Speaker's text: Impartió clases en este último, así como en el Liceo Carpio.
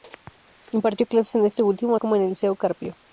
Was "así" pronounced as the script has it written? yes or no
no